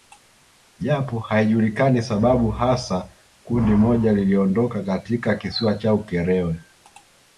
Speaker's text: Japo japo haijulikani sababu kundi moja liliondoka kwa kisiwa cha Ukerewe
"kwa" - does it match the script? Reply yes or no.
no